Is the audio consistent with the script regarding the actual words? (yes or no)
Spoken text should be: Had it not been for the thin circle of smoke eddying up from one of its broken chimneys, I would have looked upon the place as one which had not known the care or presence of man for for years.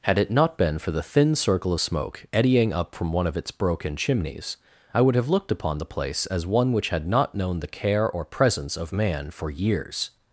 no